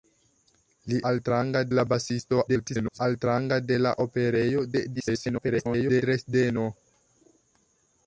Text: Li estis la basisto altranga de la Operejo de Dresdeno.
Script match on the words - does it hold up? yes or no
no